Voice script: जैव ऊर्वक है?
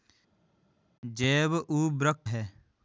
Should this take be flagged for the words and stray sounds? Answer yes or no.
no